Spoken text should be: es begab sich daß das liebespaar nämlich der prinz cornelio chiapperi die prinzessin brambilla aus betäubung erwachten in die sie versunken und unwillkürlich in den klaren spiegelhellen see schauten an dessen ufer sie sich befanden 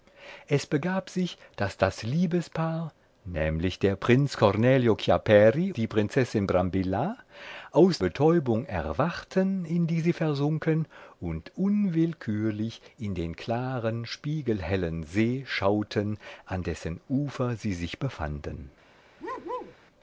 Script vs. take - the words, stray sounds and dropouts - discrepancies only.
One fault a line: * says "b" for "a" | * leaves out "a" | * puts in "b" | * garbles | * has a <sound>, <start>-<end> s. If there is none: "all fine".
* has a bark, 19.2-19.7 s